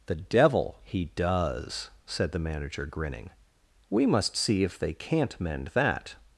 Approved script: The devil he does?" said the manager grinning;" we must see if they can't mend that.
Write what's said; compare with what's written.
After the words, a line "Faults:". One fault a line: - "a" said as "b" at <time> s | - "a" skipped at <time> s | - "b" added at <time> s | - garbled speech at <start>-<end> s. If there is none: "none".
The devil he does?" said the manager grinning;" we must see if they can't mend that.
Faults:
none